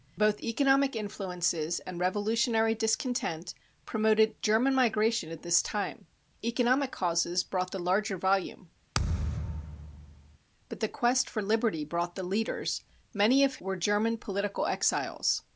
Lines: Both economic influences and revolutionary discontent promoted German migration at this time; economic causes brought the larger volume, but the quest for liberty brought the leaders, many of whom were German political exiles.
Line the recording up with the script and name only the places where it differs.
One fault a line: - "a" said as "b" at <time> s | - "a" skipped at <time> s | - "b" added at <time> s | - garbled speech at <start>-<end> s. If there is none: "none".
- "whom" skipped at 13.6 s